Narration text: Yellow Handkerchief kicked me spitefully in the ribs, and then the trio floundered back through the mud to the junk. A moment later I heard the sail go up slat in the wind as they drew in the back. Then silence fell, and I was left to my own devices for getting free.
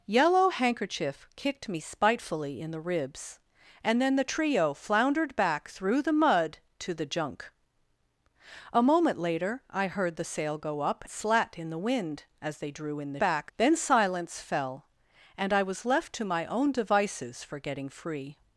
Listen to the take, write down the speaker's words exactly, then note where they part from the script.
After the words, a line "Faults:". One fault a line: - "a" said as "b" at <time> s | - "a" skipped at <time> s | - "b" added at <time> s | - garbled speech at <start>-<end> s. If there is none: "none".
Yellow Handkerchief kicked me spitefully in the ribs, and then the trio floundered back through the mud to the junk. A moment later I heard the sail go up slat in the wind as they drew in the back. Then silence fell, and I was left to my own devices for getting free.
Faults:
none